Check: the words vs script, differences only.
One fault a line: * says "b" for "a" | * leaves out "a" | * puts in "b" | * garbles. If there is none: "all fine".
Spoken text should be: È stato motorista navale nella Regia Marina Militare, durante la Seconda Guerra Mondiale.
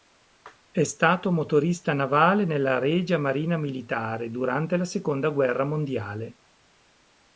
all fine